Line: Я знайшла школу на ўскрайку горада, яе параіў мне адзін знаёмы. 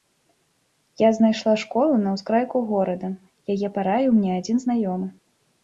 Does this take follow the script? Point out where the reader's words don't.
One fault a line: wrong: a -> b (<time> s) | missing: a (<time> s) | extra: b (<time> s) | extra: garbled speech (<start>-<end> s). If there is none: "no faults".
no faults